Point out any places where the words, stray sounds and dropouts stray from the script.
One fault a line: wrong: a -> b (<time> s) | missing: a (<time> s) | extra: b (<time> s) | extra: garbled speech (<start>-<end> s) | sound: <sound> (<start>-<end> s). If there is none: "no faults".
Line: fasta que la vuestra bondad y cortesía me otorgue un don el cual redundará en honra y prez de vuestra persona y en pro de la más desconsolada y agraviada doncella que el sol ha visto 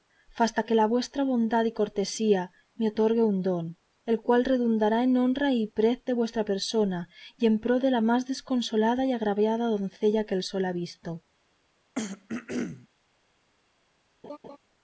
sound: throat clearing (12.0-12.9 s)
sound: laugh (14.2-14.6 s)